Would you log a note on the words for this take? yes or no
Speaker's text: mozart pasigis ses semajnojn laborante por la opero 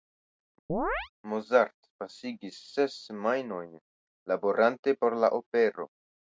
no